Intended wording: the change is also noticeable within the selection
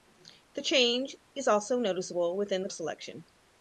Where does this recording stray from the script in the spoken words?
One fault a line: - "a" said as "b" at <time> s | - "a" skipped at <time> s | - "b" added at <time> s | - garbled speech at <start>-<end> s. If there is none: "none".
none